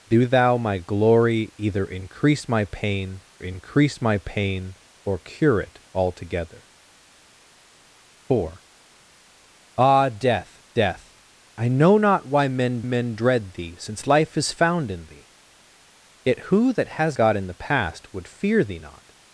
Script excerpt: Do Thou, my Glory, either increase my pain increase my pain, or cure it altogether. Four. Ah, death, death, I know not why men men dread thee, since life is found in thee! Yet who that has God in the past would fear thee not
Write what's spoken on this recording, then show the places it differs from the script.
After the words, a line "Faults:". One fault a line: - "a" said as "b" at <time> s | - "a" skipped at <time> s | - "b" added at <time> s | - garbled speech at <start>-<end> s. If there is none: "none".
Do Thou, my Glory, either increase my pain increase my pain, or cure it altogether. Four. Ah, death, death, I know not why men men dread thee, since life is found in thee! Yet who that has God in the past would fear thee not
Faults:
none